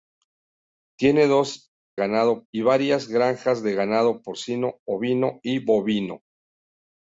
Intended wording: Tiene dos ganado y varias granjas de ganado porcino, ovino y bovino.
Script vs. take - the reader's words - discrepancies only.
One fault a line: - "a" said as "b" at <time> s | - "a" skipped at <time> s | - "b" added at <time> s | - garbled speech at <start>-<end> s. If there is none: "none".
none